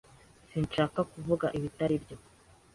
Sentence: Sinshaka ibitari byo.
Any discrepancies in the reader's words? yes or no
yes